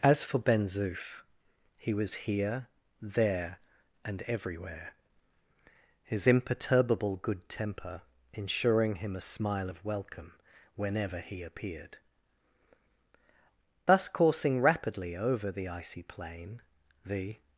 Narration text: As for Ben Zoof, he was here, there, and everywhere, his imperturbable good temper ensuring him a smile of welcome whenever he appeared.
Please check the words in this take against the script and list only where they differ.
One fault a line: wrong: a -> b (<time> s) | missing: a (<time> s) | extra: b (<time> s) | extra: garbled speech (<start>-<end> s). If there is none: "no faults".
extra: Thus coursing rapidly over the icy plain the (13.9 s)